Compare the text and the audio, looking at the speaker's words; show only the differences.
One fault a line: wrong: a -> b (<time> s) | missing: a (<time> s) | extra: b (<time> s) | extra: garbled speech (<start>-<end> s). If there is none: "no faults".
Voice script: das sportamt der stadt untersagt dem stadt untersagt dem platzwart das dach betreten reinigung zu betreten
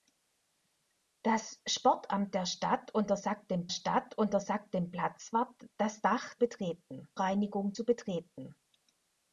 no faults